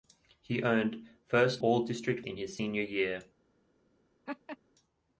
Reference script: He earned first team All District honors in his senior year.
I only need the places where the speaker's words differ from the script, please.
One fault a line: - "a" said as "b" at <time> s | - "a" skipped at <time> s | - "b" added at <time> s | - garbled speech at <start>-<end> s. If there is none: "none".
- "team" skipped at 1.6 s
- "honors" skipped at 2.2 s